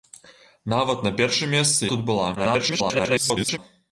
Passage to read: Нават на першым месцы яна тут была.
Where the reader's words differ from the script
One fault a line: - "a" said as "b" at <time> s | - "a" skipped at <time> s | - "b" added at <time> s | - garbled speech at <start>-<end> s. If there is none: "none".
- "яна" skipped at 1.9 s
- garbled speech at 2.4-3.6 s